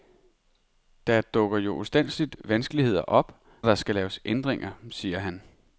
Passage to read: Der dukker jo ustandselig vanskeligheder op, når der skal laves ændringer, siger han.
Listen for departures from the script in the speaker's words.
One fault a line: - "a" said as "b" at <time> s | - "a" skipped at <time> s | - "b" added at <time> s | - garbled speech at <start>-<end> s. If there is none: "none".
- "når" skipped at 3.4 s